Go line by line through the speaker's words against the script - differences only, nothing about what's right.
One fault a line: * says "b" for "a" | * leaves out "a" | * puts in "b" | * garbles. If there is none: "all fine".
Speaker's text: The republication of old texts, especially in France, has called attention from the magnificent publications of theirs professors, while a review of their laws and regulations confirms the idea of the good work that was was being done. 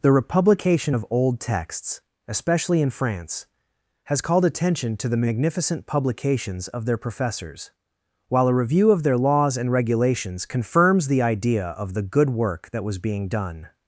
* says "to" for "from"
* says "their" for "theirs"
* leaves out "was"